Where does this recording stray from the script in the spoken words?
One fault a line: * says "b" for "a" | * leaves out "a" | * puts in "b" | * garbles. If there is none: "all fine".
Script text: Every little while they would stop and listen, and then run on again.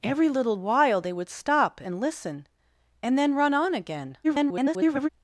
* garbles